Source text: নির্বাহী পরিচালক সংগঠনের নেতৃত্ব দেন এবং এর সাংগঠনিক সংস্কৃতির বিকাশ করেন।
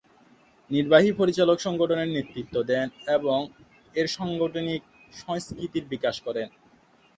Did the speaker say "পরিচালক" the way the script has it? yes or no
yes